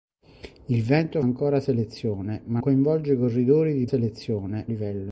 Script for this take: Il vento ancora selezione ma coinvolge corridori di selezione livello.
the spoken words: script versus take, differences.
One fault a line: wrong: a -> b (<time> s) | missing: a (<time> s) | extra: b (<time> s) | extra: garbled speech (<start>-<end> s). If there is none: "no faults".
no faults